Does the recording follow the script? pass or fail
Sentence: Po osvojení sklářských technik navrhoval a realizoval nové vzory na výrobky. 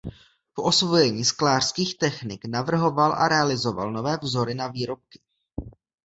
pass